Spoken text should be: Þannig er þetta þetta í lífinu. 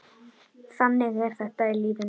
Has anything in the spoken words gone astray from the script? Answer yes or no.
yes